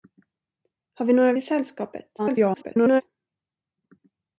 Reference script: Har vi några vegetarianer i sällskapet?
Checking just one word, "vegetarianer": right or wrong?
wrong